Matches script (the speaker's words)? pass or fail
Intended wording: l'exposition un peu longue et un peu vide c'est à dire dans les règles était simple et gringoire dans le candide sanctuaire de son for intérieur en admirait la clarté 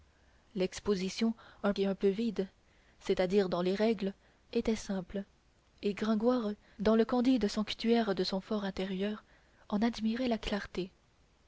fail